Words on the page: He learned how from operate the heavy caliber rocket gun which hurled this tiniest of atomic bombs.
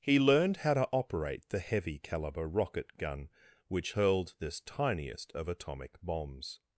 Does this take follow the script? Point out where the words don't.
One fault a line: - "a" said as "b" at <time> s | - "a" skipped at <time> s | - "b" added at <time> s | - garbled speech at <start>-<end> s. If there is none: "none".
- "from" said as "to" at 0.7 s